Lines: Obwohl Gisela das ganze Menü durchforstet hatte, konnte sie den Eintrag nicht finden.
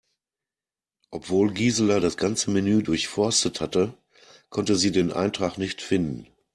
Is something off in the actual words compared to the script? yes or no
no